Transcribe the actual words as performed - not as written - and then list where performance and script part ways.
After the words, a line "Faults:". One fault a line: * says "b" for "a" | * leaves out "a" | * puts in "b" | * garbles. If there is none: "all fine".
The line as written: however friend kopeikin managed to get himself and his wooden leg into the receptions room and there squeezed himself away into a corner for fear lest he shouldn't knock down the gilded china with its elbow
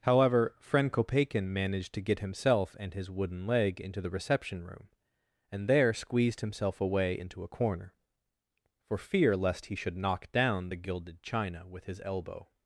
however friend kopeikin managed to get himself and his wooden leg into the reception room and there squeezed himself away into a corner for fear lest he should knock down the gilded china with his elbow
Faults:
* says "reception" for "receptions"
* says "should" for "shouldn't"
* says "his" for "its"